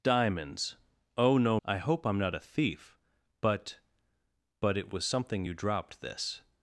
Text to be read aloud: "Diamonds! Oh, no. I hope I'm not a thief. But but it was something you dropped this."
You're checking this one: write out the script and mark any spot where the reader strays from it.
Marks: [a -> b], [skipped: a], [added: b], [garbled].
"Diamonds! Oh, no. I hope I'm not a thief. But but it was something you dropped this."